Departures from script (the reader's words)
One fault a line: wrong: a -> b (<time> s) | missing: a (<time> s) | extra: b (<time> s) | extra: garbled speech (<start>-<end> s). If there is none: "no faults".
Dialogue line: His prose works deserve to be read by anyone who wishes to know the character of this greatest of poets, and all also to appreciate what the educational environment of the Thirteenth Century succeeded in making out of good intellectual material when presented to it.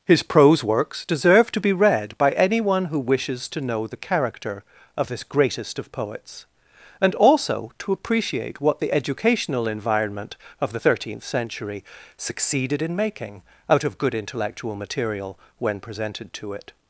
missing: all (7.1 s)